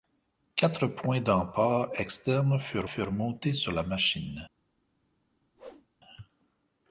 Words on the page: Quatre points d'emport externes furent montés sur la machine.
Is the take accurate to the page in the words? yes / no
no